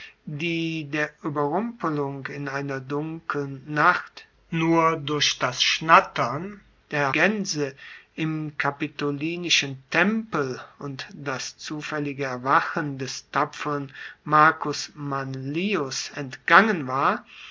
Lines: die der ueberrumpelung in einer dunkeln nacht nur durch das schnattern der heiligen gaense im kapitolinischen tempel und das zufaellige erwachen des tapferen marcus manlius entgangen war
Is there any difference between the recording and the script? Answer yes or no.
yes